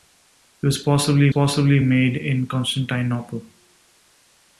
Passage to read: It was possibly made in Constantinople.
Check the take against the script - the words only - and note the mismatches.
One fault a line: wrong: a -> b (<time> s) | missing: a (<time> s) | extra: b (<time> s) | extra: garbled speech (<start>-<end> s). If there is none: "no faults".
extra: possibly (1.3 s)